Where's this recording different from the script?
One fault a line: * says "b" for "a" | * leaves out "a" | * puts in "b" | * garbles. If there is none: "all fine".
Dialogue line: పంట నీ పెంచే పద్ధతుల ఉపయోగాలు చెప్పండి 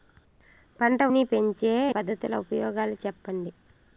all fine